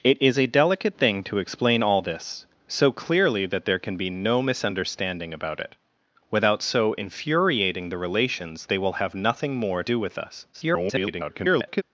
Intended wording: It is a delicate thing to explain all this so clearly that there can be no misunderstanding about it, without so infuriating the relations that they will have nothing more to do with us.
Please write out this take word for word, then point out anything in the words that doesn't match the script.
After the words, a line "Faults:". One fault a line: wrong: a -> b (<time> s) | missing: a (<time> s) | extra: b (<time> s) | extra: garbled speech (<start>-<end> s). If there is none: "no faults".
It is a delicate thing to explain all this so clearly that there can be no misunderstanding about it, without so infuriating the relations they will have nothing more do with us. [garbled]
Faults:
missing: that (8.7 s)
missing: to (9.8 s)
extra: garbled speech (10.5-11.8 s)